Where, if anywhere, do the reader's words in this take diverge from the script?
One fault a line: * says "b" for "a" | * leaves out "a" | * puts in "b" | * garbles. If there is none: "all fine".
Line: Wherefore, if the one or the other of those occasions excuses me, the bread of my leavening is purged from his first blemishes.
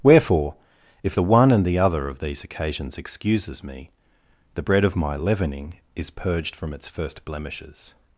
* says "and" for "or"
* says "these" for "those"
* says "its" for "his"